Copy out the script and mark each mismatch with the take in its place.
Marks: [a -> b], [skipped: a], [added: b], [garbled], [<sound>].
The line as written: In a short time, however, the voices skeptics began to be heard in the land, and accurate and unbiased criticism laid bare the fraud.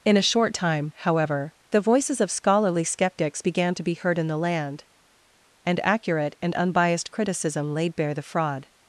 In a short time, however, the voices [added: of scholarly] skeptics began to be heard in the land, and accurate and unbiased criticism laid bare the fraud.